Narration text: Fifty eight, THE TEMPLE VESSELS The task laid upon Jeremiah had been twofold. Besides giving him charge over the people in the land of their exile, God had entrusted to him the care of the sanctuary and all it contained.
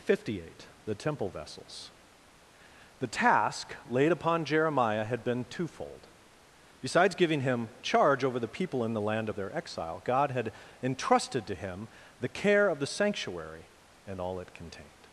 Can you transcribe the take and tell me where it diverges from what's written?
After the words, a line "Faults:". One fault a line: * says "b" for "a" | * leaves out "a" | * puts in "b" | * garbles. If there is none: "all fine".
Fifty eight, THE TEMPLE VESSELS The task laid upon Jeremiah had been twofold. Besides giving him charge over the people in the land of their exile, God had entrusted to him the care of the sanctuary and all it contained.
Faults:
all fine